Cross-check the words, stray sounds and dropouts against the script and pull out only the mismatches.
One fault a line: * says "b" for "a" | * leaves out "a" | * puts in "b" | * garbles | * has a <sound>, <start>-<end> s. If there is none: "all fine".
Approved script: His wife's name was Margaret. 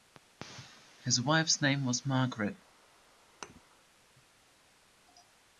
* has a thud, 3.4-3.6 s